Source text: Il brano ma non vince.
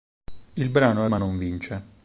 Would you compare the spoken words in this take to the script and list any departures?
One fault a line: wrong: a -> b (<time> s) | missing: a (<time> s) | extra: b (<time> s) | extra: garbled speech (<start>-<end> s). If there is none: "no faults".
no faults